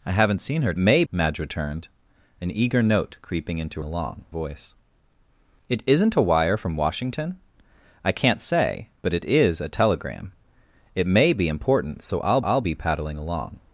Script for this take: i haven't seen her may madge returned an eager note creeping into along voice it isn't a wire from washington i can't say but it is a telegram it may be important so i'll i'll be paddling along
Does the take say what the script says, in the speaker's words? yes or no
yes